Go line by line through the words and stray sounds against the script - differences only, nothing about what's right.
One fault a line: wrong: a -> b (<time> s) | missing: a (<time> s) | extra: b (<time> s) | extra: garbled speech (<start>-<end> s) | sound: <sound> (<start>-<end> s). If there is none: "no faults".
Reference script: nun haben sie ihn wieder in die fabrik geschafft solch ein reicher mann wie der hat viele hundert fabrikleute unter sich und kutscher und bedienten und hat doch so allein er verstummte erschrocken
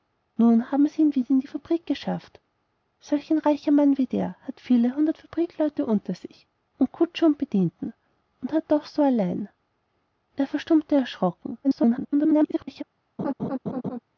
extra: garbled speech (11.6-12.8 s)
sound: laugh (13.2-14.0 s)